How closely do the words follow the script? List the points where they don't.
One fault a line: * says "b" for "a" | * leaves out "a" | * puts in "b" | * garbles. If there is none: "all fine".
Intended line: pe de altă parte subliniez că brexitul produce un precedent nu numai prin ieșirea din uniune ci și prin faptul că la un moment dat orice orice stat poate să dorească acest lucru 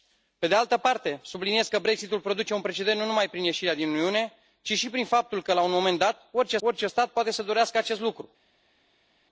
all fine